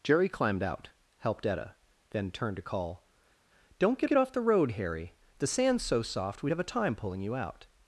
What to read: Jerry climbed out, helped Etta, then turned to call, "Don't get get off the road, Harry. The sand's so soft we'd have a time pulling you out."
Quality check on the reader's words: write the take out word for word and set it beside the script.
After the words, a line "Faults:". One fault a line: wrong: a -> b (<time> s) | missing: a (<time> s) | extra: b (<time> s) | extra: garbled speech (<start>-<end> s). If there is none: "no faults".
Jerry climbed out, helped Etta, then turned to call, "Don't get get off the road, Harry. The sand's so soft we'd have a time pulling you out."
Faults:
no faults